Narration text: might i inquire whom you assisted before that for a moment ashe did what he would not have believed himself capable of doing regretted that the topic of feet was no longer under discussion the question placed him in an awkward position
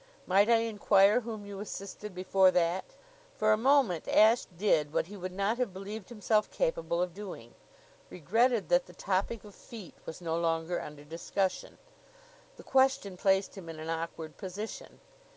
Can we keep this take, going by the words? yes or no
yes